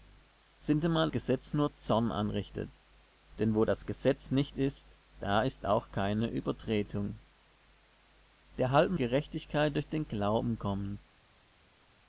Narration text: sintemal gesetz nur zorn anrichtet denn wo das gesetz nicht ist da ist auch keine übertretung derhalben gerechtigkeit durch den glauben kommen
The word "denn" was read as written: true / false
true